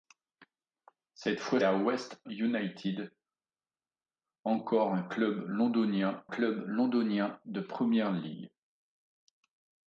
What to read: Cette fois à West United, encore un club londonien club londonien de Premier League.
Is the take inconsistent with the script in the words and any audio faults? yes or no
no